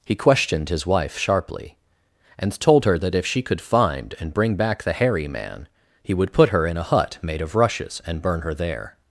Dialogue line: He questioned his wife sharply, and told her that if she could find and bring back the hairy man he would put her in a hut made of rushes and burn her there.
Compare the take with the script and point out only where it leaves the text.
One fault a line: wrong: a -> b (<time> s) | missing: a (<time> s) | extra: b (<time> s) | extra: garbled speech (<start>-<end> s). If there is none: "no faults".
no faults